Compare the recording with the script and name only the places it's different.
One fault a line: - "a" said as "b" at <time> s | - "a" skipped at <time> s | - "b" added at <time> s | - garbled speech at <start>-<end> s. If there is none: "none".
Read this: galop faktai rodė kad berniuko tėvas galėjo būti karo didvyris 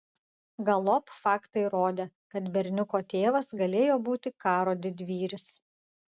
none